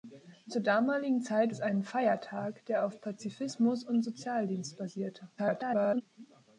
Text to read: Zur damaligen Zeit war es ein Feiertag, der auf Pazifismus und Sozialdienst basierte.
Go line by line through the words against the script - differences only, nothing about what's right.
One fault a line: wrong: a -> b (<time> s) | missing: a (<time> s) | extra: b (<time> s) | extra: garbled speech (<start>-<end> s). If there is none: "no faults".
missing: war (1.6 s)
extra: garbled speech (5.4-6.0 s)